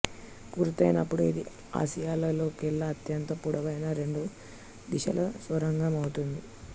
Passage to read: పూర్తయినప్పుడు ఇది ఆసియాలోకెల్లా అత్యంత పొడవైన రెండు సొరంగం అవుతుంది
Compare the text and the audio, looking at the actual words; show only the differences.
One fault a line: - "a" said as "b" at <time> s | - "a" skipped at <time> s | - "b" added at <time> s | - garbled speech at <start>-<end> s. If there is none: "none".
- "దిశల" added at 4.9 s